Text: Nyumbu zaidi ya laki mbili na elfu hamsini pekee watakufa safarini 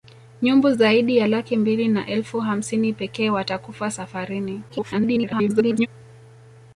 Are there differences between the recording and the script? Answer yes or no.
yes